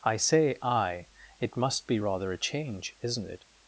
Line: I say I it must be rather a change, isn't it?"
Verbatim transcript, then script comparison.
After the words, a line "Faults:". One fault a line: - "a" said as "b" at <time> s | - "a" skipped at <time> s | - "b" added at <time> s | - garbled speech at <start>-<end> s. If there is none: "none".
I say I it must be rather a change, isn't it?"
Faults:
none